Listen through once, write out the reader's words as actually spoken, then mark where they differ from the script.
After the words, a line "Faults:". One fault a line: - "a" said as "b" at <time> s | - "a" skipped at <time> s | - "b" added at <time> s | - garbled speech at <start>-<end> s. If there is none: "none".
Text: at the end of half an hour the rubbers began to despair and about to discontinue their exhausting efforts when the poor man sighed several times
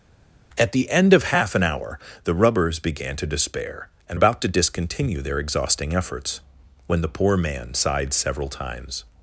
at the end of half an hour the rubbers began to despair and about to discontinue their exhausting efforts when the poor man sighed several times
Faults:
none